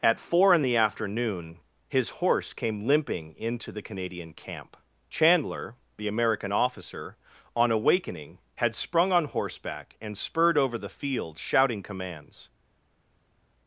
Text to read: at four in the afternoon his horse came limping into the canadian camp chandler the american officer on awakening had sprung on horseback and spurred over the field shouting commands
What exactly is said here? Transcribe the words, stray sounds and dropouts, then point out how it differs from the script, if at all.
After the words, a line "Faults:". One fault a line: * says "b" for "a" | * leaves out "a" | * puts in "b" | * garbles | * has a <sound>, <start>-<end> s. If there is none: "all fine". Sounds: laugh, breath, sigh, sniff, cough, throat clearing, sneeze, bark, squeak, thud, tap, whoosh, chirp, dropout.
at four in the afternoon his horse came limping into the canadian camp chandler the american officer on awakening had sprung on horseback and spurred over the field shouting commands
Faults:
all fine